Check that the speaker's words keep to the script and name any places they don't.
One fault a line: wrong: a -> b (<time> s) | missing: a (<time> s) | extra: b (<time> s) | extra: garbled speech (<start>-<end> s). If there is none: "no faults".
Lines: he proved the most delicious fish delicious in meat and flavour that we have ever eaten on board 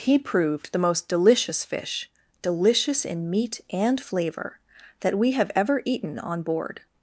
no faults